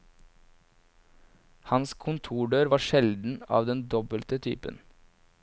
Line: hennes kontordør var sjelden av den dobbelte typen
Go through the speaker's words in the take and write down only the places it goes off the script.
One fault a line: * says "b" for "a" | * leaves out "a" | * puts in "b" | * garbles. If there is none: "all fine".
* says "hans" for "hennes"